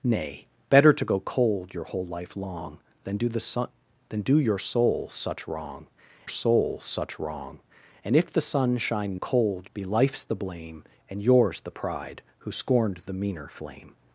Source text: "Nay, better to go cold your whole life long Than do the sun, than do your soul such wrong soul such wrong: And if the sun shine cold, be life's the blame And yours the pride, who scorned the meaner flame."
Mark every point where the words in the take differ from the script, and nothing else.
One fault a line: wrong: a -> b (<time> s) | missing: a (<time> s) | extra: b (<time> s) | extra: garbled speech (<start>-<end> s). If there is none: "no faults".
no faults